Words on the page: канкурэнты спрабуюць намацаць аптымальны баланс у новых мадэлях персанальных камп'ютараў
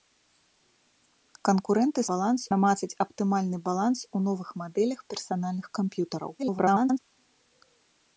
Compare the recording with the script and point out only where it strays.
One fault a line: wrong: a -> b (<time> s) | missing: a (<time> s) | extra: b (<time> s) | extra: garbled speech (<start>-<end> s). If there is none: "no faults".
wrong: спрабуюць -> баланс (2.1 s)
extra: garbled speech (6.4-7.0 s)